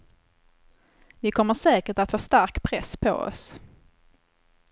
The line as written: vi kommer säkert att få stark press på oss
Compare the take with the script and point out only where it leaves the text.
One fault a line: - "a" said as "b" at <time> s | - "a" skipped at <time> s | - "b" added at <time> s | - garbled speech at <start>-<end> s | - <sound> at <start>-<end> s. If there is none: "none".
none